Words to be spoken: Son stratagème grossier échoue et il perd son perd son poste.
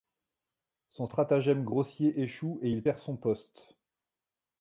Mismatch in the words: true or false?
true